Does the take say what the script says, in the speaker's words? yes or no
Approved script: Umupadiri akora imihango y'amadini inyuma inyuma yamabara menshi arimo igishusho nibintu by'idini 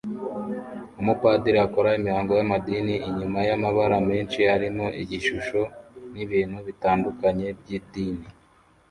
no